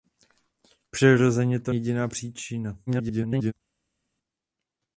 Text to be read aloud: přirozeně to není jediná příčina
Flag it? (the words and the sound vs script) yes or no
yes